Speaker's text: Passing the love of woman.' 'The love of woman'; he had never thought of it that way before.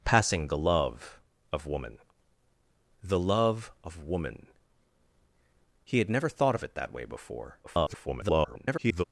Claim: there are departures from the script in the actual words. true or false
true